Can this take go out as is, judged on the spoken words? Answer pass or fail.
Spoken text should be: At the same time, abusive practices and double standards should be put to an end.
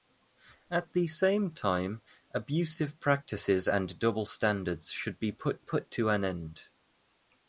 fail